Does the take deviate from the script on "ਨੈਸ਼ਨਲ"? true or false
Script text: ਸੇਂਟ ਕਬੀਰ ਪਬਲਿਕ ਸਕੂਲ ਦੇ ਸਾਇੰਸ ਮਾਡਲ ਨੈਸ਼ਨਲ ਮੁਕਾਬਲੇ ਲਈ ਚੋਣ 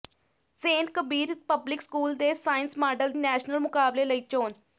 false